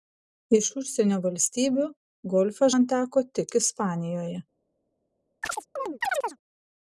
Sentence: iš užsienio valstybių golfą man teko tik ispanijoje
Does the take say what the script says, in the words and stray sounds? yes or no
no